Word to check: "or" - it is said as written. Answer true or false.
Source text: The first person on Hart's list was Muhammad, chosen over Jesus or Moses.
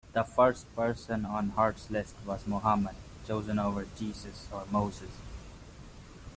true